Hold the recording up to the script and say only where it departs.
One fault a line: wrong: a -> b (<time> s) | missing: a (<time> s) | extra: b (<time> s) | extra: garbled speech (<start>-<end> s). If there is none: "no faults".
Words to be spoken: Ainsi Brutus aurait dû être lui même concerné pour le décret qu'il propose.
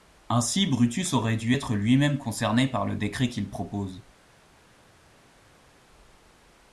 wrong: pour -> par (2.7 s)